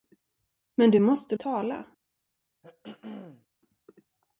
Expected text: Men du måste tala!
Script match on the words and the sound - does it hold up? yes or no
no